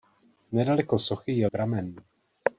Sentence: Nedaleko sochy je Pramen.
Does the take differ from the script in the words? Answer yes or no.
no